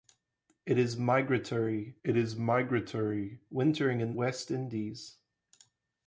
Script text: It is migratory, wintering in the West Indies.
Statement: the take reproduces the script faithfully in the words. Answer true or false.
false